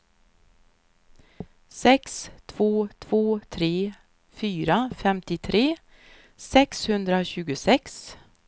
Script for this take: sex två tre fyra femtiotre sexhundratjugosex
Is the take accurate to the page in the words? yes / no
no